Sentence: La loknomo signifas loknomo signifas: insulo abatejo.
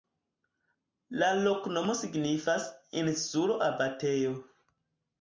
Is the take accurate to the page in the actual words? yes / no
no